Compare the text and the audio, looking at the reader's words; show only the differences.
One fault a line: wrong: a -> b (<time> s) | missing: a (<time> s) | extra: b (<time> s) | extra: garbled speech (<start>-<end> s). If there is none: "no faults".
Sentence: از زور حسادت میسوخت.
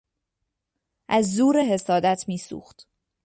no faults